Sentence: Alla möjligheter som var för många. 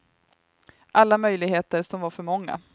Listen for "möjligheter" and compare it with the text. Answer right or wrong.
right